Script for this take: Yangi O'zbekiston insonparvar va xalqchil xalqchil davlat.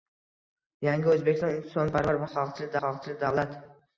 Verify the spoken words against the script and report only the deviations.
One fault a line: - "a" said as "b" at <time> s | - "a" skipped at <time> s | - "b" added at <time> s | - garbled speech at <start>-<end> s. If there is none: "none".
none